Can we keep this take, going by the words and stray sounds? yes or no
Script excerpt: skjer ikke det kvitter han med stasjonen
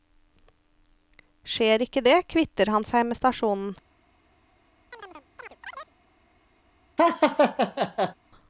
no